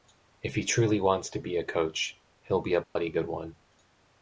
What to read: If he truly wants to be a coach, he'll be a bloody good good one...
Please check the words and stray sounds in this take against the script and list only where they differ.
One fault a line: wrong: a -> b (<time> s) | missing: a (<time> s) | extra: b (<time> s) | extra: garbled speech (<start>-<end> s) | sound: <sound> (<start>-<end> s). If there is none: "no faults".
sound: dropout (2.8-3.0 s)
missing: good (3.3 s)